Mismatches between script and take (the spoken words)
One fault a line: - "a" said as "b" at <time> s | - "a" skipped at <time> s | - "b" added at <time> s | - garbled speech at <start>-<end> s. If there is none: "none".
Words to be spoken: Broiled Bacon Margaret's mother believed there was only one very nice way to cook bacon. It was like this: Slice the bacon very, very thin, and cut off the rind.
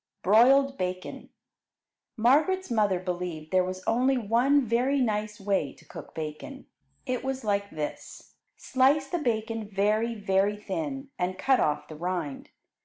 none